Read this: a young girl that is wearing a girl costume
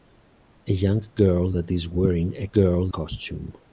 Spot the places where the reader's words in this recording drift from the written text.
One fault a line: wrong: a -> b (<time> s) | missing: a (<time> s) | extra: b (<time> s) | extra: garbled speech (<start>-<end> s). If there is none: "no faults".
no faults